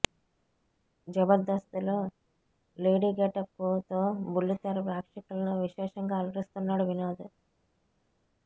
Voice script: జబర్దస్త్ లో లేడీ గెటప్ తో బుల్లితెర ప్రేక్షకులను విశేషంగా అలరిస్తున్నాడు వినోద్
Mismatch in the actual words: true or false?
false